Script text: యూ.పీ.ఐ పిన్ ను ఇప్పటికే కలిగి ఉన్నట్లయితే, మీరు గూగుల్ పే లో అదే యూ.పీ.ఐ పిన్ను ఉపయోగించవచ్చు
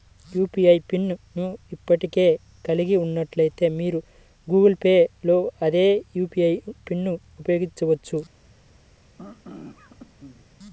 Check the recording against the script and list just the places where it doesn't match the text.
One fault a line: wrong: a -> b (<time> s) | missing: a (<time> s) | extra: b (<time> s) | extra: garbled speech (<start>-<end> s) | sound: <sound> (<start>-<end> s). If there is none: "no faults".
sound: throat clearing (9.2-10.5 s)